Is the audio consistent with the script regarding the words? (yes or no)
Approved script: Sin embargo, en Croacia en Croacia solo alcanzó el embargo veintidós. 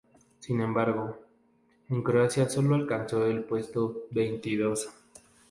no